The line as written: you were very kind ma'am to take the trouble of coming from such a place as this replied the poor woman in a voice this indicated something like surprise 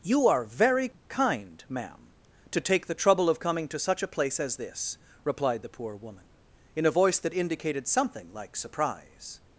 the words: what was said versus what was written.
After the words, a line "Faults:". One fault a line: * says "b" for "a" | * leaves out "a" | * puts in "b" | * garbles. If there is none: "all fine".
you are very kind ma'am to take the trouble of coming to such a place as this replied the poor woman in a voice that indicated something like surprise
Faults:
* says "are" for "were"
* says "to" for "from"
* says "that" for "this"